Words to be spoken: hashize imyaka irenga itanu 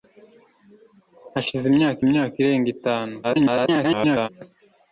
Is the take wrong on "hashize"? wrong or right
right